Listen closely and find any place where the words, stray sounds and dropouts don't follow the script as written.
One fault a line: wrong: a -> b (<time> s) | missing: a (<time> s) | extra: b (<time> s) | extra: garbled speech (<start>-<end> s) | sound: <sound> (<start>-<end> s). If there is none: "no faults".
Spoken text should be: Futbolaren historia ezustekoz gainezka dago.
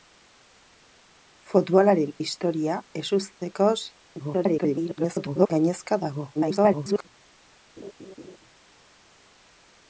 extra: garbled speech (4.2-5.5 s)
extra: garbled speech (6.4-7.1 s)
sound: laugh (7.8-8.4 s)